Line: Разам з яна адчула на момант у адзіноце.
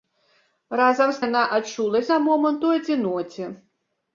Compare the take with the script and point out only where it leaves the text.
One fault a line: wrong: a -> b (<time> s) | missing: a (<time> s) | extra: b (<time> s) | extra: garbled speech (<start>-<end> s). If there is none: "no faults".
no faults